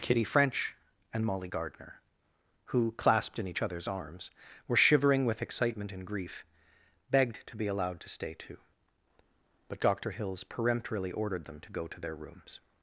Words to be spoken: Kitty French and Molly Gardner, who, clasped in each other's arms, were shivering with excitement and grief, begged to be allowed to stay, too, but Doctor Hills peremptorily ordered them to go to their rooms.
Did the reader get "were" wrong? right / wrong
right